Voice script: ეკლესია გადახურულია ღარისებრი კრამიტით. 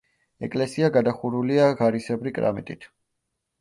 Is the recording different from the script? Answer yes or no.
no